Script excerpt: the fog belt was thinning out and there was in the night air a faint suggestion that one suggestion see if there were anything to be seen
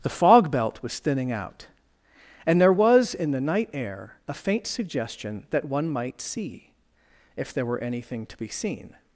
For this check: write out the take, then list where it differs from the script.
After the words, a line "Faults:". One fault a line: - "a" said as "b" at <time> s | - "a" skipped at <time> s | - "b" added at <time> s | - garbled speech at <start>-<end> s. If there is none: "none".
the fog belt was thinning out and there was in the night air a faint suggestion that one might see if there were anything to be seen
Faults:
- "suggestion" said as "might" at 5.9 s